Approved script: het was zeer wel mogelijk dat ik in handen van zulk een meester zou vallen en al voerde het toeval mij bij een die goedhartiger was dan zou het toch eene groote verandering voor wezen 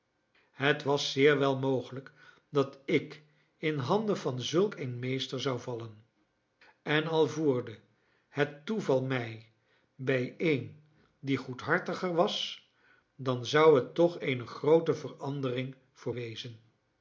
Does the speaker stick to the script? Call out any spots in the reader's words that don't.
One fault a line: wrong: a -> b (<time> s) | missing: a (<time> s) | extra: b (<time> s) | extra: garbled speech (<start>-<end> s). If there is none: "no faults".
no faults